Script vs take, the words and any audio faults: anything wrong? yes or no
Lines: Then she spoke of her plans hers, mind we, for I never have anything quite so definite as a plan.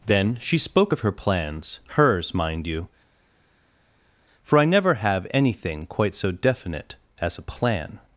yes